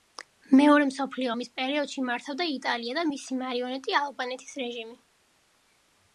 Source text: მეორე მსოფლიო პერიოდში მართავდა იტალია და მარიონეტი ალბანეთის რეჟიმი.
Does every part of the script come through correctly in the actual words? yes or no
no